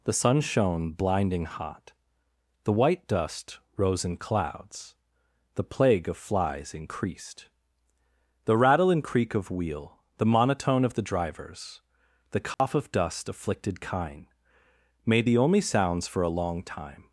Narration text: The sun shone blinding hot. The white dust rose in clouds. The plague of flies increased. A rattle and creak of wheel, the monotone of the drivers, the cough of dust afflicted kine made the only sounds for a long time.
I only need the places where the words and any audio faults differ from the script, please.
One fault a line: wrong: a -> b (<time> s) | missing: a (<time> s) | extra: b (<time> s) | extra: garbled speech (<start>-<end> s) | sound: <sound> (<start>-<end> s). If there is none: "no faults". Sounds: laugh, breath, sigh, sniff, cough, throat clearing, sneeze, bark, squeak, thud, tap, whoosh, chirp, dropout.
wrong: A -> The (8.4 s)
sound: dropout (12.5-12.6 s)